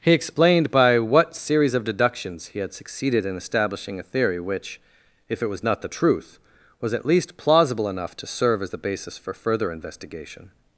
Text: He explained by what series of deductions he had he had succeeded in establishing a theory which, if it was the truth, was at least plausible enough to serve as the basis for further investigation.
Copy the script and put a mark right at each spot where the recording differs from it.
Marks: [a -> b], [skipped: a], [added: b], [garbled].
He explained by what series of deductions he had [skipped: he had] succeeded in establishing a theory which, if it was [added: not] the truth, was at least plausible enough to serve as the basis for further investigation.